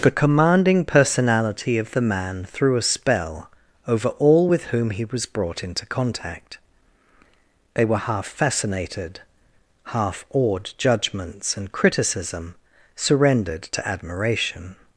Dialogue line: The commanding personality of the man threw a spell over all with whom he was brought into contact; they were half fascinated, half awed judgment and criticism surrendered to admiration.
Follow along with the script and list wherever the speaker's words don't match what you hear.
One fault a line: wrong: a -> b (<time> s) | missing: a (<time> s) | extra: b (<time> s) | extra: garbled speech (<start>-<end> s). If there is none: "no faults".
wrong: judgment -> judgments (10.8 s)